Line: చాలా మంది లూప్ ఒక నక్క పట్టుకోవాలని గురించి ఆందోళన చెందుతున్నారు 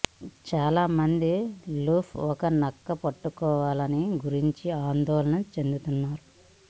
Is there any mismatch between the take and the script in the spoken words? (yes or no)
no